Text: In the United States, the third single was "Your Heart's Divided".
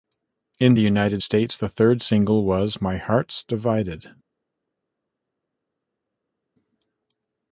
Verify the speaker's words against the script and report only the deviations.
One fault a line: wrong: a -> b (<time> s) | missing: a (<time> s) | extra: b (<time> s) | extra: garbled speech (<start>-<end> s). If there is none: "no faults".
wrong: Your -> My (2.8 s)